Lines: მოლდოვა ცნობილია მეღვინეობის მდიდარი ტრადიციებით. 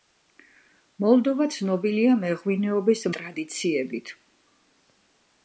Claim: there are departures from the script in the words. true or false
true